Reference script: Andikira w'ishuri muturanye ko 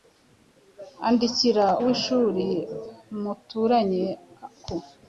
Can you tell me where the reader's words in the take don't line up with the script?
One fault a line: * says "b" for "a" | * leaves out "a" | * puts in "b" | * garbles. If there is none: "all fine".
all fine